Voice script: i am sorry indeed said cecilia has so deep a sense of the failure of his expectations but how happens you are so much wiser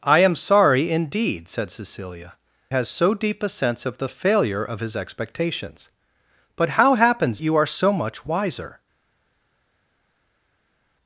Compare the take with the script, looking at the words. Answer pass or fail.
pass